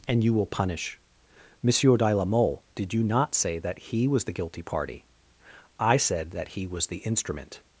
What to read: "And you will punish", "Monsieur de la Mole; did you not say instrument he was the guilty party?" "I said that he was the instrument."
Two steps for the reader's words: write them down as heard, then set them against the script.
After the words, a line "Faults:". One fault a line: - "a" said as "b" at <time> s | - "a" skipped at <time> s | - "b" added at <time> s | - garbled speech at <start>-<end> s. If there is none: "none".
"And you will punish", "Monsieur de la Mole; did you not say that he was the guilty party?" "I said that he was the instrument."
Faults:
- "instrument" said as "that" at 3.6 s